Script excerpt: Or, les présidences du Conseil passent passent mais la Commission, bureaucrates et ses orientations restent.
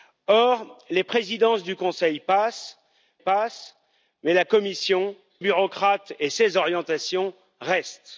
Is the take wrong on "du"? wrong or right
right